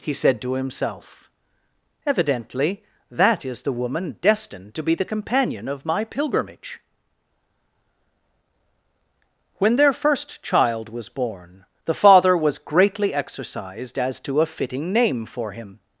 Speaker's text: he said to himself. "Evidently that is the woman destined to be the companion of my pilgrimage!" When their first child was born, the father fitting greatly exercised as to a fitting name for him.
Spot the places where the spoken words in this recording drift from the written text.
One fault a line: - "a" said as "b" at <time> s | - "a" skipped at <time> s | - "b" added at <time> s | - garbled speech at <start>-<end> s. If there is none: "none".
- "fitting" said as "was" at 12.3 s